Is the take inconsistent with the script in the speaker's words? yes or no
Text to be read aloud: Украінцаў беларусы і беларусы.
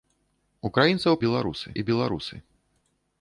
no